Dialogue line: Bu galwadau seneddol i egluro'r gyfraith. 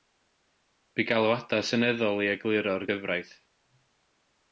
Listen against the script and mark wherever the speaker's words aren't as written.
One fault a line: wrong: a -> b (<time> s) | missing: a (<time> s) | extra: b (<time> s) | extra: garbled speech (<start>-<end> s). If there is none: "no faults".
no faults